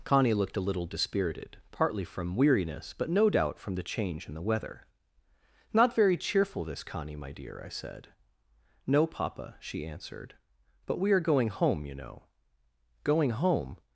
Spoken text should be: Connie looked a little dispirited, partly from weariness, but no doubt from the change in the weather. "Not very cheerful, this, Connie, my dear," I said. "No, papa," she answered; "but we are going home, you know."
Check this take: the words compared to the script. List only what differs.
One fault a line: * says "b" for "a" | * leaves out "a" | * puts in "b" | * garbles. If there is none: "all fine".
* puts in "Going home"